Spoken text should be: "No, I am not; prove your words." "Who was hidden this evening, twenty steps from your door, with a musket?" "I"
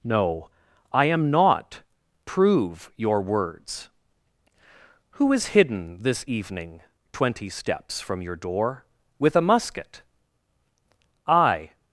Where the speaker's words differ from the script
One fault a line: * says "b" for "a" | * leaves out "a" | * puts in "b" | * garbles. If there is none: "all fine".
* says "is" for "was"